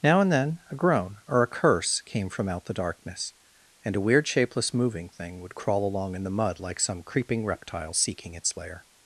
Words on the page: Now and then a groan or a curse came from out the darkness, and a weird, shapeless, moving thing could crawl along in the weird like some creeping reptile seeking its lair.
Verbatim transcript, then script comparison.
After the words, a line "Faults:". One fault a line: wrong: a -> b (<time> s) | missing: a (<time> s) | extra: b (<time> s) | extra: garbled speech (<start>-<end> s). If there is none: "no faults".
Now and then a groan or a curse came from out the darkness, and a weird, shapeless, moving thing would crawl along in the mud like some creeping reptile seeking its lair.
Faults:
wrong: could -> would (5.4 s)
wrong: weird -> mud (6.3 s)